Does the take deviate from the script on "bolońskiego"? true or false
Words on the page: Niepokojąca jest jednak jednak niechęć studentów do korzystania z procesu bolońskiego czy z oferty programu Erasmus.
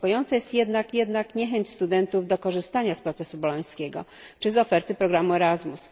false